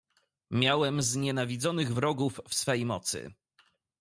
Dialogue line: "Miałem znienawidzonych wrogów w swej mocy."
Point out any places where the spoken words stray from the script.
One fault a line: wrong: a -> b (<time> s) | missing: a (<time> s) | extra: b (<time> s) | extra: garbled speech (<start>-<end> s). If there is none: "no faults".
no faults